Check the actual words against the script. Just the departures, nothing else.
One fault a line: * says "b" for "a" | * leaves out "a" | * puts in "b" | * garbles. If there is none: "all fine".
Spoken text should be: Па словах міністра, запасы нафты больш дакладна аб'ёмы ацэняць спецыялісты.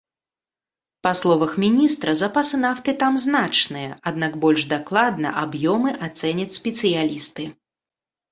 * puts in "там значныя аднак"